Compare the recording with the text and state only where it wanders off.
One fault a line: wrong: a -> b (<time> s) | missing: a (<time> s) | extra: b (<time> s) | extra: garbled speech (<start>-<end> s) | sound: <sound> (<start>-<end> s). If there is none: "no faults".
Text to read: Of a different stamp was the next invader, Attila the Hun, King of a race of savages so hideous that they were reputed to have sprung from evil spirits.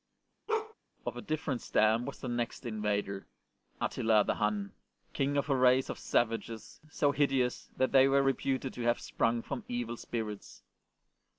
sound: bark (0.5-0.7 s)